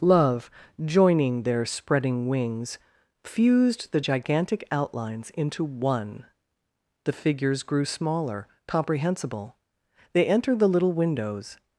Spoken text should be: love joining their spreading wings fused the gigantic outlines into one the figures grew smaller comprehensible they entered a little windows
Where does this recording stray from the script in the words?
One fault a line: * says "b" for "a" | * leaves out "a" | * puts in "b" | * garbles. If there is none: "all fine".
* says "the" for "a"